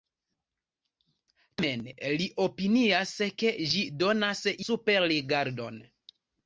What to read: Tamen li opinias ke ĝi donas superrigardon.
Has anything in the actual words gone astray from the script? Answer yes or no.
no